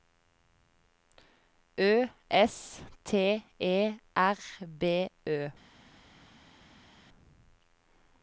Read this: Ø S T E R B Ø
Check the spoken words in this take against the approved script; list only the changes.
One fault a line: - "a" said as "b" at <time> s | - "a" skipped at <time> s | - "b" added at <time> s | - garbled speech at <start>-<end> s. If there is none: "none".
none